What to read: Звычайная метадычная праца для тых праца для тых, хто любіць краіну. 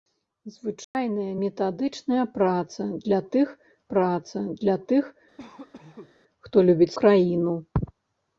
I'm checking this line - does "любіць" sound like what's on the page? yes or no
yes